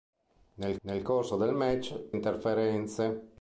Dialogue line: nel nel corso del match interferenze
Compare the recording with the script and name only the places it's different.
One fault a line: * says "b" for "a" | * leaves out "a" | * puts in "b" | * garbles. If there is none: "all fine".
all fine